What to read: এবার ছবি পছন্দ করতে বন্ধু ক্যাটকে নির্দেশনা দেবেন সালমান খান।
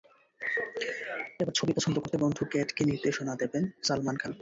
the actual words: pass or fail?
pass